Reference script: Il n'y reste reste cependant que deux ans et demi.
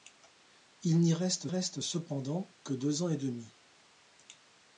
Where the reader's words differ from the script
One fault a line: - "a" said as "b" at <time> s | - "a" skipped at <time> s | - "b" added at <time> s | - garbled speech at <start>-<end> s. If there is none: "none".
none